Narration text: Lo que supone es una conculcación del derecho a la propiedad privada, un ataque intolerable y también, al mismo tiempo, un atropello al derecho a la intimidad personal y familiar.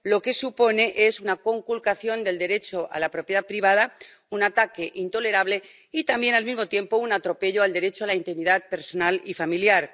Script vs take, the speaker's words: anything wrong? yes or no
no